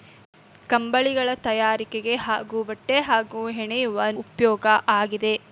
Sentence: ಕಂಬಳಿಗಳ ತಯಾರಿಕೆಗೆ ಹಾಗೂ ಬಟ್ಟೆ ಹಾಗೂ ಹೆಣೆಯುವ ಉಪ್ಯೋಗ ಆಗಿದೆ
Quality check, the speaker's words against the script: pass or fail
pass